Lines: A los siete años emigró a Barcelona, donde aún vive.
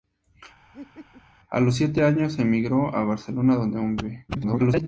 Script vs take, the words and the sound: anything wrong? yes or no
yes